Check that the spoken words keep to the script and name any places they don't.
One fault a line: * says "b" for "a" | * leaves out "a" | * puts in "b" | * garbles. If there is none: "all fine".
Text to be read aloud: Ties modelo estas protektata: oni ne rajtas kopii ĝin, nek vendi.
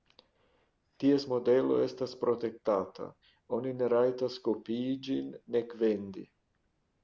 all fine